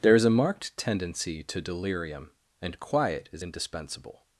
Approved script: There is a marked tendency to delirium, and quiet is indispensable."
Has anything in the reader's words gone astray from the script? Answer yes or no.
no